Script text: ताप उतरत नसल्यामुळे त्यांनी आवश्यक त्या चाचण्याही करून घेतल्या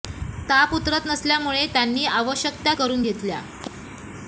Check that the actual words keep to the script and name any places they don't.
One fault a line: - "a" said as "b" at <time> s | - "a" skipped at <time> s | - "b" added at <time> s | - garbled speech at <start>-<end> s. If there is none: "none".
- "चाचण्याही" skipped at 2.7 s